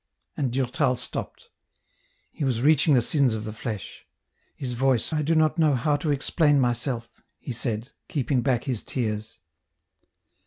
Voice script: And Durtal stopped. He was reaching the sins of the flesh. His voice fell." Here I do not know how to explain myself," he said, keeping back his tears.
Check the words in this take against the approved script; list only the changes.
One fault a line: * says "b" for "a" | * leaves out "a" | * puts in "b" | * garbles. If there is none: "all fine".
* leaves out "fell Here"